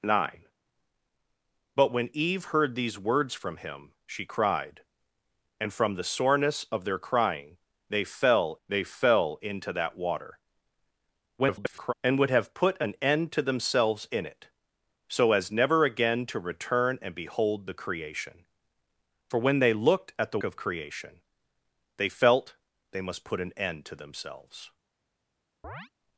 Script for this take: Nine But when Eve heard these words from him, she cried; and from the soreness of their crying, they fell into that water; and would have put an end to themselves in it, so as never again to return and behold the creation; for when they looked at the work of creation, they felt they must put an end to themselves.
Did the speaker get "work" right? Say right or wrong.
wrong